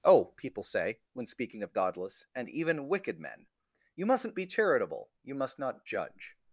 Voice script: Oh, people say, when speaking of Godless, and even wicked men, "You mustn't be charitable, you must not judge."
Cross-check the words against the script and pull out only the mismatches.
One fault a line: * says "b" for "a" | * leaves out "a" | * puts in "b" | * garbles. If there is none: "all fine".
all fine